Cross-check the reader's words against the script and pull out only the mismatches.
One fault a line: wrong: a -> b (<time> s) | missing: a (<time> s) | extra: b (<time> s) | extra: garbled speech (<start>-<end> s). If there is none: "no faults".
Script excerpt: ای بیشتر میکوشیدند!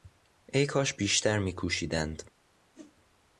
extra: کاش (0.7 s)